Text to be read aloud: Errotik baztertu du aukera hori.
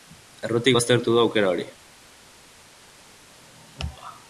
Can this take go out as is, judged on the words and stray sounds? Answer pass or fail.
pass